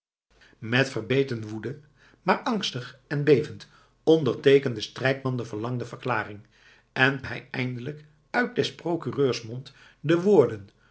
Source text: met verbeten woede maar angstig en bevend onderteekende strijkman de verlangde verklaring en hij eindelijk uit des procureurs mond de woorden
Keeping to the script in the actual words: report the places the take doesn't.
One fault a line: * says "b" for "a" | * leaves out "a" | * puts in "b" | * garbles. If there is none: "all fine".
all fine